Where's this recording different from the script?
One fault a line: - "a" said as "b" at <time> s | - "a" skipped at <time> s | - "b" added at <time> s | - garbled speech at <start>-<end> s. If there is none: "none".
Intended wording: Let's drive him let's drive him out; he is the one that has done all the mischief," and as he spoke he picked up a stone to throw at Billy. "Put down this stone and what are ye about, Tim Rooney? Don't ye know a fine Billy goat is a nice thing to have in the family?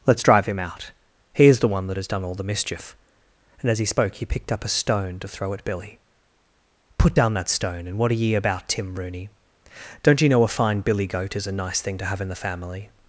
- "let's drive him" skipped at 0.6 s
- "this" said as "that" at 7.3 s